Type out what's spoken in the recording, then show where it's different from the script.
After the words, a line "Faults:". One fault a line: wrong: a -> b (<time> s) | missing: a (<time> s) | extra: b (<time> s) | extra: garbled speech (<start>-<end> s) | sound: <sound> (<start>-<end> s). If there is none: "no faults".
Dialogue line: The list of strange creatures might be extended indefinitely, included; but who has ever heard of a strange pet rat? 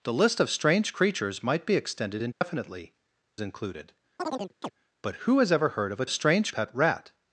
The list of strange creatures might be extended indefinitely, included; but who has ever heard of a strange pet rat?
Faults:
sound: dropout (2.3-2.4 s)
sound: chirp (4.2-4.7 s)